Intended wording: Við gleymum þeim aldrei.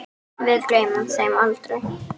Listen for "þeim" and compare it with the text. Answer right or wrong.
right